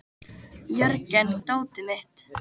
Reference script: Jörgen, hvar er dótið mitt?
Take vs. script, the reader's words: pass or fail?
fail